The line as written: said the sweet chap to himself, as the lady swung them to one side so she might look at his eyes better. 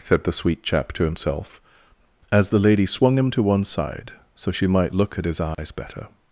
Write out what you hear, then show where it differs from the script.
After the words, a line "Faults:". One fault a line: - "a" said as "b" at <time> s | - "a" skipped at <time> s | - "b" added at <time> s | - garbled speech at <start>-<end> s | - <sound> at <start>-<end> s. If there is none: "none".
said the sweet chap to himself, as the lady swung him to one side so she might look at his eyes better.
Faults:
- "them" said as "him" at 3.2 s
- dropout at 5.5-5.6 s